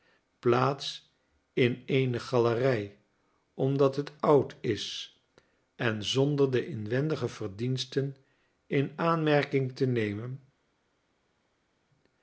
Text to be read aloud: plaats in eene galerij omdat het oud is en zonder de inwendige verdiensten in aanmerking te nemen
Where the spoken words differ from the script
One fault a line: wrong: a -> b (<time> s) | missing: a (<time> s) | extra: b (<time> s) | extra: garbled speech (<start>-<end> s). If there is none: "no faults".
no faults